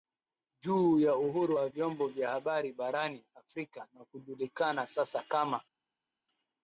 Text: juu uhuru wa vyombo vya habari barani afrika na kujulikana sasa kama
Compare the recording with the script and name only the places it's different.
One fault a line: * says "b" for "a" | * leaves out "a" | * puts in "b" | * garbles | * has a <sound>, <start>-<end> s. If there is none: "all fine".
* puts in "ya"